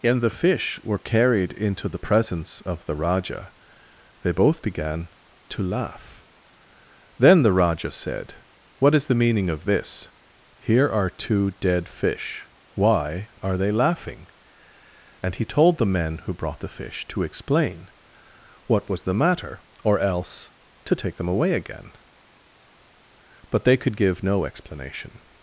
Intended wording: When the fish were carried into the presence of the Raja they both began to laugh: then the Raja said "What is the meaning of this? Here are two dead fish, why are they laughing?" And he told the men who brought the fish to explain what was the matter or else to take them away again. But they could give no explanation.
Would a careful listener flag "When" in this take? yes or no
yes